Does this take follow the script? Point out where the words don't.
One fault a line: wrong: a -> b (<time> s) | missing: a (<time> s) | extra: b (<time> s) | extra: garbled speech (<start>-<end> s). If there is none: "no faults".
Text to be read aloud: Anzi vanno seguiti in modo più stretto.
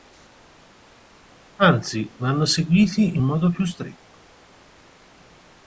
no faults